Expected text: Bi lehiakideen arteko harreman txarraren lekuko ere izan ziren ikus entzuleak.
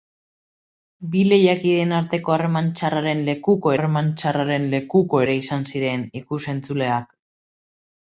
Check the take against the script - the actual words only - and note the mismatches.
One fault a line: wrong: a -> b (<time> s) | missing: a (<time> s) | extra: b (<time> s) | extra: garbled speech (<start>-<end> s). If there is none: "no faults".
extra: harreman txarraren lekuko (3.8 s)